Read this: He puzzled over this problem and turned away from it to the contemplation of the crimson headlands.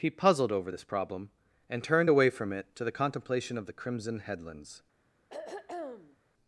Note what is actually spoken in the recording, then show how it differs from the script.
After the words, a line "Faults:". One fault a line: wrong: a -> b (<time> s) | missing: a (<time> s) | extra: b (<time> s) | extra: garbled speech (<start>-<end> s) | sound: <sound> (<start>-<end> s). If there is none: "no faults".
He puzzled over this problem and turned away from it to the contemplation of the crimson headlands.
Faults:
sound: throat clearing (5.3-6.2 s)